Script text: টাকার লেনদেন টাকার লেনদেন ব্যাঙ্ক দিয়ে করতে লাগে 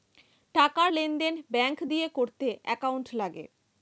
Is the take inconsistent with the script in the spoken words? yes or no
yes